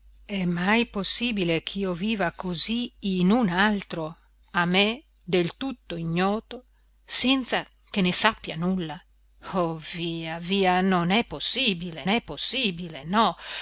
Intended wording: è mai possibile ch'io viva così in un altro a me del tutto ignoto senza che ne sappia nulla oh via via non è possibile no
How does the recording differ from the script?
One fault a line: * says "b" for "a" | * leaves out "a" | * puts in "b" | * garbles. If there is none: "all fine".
* puts in "è possibile"